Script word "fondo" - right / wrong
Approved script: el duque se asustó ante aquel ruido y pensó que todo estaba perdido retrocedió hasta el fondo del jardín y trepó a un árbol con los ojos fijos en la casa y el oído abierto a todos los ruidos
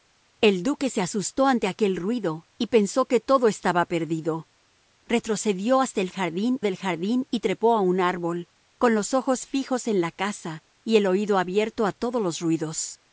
wrong